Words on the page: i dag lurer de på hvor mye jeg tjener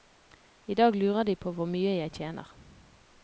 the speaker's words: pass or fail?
pass